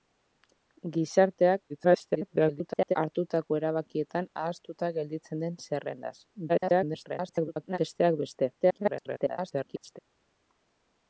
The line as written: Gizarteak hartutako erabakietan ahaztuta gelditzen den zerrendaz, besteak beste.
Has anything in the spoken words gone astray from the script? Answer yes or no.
yes